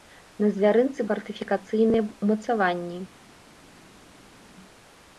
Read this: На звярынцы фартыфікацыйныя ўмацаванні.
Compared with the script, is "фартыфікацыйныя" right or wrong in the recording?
right